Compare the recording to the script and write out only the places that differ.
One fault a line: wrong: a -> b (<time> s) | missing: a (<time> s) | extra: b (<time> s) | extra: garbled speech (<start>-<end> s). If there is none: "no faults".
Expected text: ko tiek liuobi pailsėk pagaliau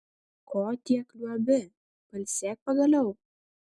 no faults